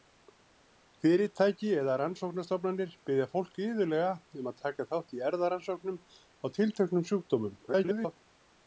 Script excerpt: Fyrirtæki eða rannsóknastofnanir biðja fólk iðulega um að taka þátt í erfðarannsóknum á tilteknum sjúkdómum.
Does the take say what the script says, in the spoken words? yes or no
no